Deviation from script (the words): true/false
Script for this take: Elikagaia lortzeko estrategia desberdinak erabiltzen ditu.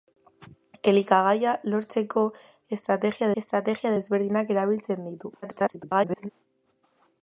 true